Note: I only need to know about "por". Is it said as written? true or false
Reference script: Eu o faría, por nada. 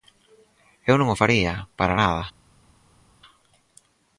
false